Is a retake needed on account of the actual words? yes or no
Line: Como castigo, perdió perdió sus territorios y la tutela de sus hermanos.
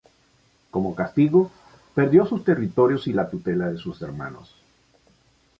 yes